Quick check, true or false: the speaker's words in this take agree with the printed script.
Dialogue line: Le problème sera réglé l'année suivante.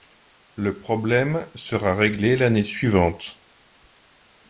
true